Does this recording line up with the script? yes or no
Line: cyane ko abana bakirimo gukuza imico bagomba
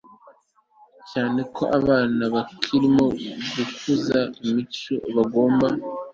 yes